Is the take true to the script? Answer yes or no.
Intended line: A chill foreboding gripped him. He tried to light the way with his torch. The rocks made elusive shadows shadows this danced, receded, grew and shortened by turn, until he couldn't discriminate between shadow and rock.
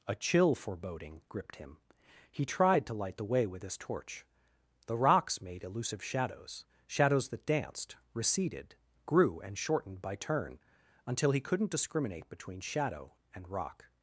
no